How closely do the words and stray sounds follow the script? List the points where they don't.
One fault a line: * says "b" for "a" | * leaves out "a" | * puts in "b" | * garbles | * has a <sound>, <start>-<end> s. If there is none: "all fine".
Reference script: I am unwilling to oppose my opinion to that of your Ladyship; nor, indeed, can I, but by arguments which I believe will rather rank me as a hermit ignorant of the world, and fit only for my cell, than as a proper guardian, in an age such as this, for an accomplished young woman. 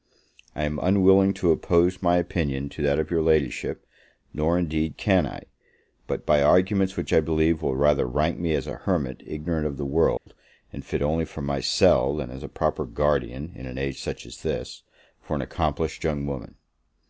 * has a dropout, 10.2-10.3 s